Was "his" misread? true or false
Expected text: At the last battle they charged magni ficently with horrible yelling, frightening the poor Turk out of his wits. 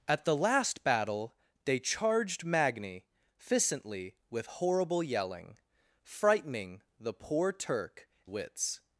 true